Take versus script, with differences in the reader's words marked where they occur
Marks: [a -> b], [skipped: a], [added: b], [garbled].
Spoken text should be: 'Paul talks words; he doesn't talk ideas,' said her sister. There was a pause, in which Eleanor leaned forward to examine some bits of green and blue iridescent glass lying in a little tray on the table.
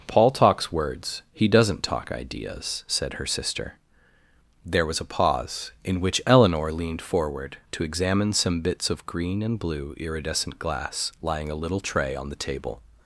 'Paul talks words; he doesn't talk ideas,' said her sister. There was a pause, in which Eleanor leaned forward to examine some bits of green and blue iridescent glass lying [skipped: in] a little tray on the table.